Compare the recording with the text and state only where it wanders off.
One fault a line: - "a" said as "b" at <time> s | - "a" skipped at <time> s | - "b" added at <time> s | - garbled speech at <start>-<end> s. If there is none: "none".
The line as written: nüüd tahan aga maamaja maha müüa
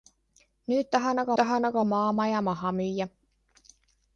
- "tahan aga" added at 1.4 s